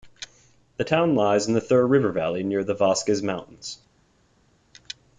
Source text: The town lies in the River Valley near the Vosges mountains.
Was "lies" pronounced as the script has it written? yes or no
yes